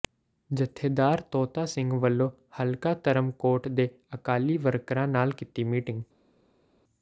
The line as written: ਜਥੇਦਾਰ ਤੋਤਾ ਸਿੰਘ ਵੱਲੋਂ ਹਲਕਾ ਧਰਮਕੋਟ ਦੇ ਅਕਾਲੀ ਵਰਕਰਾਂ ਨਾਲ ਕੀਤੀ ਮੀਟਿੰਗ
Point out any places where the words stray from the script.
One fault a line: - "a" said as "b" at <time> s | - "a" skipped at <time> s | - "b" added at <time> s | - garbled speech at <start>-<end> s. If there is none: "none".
none